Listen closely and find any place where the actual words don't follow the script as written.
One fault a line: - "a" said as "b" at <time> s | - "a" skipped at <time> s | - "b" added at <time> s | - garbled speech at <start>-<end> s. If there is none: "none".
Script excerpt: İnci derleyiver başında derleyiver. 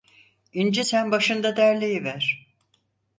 - "derleyiver" said as "sen" at 0.8 s